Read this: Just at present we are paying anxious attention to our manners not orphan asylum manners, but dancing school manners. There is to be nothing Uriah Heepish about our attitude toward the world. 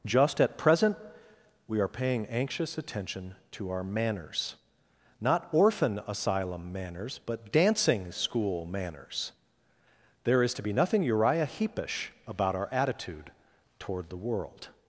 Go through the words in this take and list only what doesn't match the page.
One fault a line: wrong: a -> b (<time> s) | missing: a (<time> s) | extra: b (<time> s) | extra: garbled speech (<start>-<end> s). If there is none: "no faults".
no faults